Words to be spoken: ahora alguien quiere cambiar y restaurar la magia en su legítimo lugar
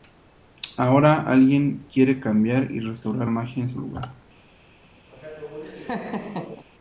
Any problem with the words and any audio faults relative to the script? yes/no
yes